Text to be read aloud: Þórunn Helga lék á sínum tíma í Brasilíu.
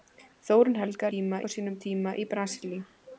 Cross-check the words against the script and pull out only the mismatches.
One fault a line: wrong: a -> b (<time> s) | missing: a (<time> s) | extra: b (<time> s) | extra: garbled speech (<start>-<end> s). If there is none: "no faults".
wrong: lék -> tíma (1.1 s)